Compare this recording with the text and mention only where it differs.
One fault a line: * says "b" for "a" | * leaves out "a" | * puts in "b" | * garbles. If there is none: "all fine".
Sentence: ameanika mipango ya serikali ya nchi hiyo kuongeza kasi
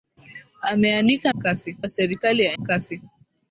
* says "kasi" for "mipango"
* leaves out "nchi hiyo kuongeza"